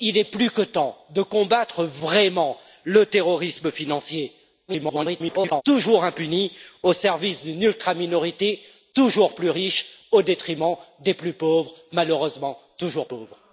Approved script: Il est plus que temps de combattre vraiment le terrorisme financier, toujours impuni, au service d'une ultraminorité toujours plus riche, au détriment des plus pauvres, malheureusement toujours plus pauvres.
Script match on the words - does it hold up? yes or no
no